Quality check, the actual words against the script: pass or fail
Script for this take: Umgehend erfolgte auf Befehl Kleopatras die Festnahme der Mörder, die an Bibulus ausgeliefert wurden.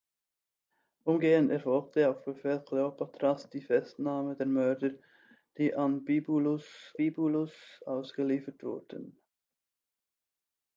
fail